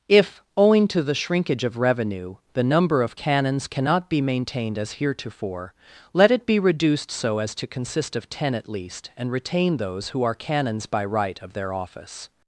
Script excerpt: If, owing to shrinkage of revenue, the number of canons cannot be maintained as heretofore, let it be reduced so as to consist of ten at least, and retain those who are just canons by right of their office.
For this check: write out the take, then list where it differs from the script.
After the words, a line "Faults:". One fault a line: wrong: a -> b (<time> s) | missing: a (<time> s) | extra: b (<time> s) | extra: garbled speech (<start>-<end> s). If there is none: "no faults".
If, owing to the shrinkage of revenue, the number of canons cannot be maintained as heretofore, let it be reduced so as to consist of ten at least, and retain those who are canons by right of their office.
Faults:
extra: the (1.0 s)
missing: just (10.3 s)